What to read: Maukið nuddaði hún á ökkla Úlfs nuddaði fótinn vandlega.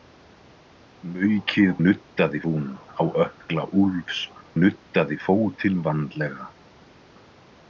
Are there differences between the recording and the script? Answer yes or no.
no